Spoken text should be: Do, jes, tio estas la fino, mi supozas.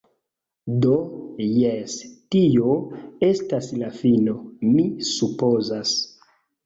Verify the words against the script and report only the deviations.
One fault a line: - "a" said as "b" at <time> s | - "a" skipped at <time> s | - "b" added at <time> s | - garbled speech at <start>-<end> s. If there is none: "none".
none